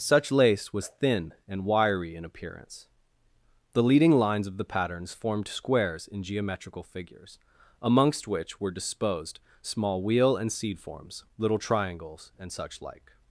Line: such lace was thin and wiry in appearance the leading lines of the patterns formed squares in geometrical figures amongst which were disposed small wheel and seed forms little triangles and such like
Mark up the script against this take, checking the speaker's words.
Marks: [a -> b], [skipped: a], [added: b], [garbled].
such lace was thin and wiry in appearance the leading lines of the patterns formed squares in geometrical figures amongst which were disposed small wheel and seed forms little triangles and such like